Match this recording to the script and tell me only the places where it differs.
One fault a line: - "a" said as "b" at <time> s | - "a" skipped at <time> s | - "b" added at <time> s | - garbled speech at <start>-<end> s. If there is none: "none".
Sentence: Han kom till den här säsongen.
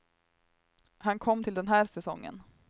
none